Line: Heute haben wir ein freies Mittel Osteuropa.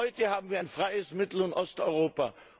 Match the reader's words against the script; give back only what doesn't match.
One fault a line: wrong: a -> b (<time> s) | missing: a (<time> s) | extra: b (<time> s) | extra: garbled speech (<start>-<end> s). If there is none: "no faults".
extra: und (1.4 s)